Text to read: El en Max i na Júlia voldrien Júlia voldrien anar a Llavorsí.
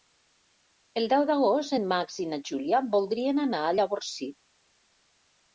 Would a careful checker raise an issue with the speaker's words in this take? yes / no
yes